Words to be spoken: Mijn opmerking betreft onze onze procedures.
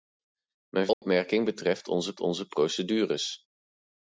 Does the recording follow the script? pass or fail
pass